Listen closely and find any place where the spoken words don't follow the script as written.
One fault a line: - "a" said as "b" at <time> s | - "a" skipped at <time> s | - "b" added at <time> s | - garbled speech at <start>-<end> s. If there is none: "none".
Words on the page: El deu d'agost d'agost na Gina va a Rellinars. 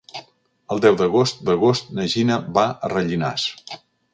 none